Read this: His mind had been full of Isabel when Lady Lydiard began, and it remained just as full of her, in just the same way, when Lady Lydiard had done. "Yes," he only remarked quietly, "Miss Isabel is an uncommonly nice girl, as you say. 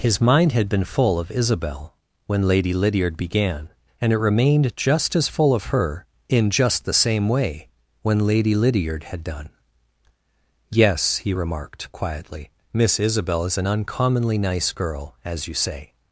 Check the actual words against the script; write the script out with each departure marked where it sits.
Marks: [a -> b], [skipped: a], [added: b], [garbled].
His mind had been full of Isabel when Lady Lydiard began, and it remained just as full of her, in just the same way, when Lady Lydiard had done. "Yes," he [skipped: only] remarked quietly, "Miss Isabel is an uncommonly nice girl, as you say.